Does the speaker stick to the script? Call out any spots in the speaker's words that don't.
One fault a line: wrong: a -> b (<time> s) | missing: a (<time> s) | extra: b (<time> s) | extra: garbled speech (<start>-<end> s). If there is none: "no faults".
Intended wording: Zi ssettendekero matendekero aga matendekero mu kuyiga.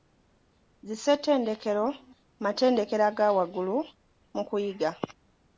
wrong: matendekero -> waggulu (3.4 s)